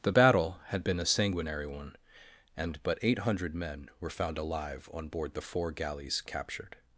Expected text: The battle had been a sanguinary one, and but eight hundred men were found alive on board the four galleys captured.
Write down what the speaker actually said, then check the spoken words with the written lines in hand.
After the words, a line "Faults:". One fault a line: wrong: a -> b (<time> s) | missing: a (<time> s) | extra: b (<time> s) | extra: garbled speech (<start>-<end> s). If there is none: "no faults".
The battle had been a sanguinary one, and but eight hundred men were found alive on board the four galleys captured.
Faults:
no faults